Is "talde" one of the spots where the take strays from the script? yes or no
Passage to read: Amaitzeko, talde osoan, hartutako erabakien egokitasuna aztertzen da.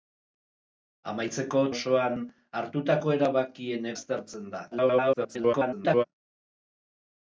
yes